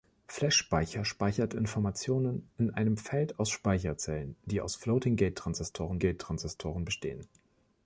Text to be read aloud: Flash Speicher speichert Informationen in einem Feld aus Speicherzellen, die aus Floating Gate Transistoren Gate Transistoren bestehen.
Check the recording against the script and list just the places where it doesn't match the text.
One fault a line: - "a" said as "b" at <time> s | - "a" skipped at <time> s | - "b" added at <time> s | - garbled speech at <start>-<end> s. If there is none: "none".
none